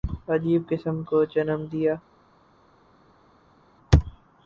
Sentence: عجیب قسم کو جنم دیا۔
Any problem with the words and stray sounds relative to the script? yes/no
no